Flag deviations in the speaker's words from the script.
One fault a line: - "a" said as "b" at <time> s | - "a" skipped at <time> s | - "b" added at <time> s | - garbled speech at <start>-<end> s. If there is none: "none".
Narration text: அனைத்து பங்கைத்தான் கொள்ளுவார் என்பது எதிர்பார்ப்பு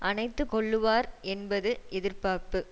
- "பங்கைத்தான்" skipped at 0.4 s